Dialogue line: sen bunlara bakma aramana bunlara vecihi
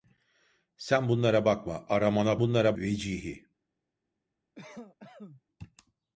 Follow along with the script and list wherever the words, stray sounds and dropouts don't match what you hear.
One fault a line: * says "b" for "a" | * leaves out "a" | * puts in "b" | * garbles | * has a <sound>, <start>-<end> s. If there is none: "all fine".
* has a cough, 4.5-5.4 s